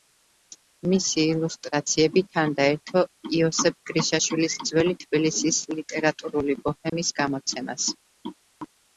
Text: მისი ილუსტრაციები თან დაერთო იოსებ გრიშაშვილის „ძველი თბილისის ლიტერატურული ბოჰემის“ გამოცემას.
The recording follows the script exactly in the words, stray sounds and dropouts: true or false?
false